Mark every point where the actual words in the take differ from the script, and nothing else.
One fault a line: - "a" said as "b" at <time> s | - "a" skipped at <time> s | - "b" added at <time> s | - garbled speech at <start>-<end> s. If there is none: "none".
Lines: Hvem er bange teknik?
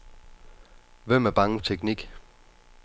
none